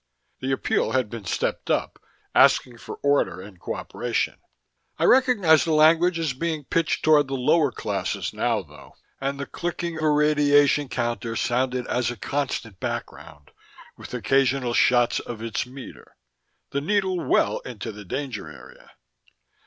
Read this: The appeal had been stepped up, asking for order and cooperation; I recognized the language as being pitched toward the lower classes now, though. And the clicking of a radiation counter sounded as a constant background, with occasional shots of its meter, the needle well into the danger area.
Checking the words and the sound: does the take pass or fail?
fail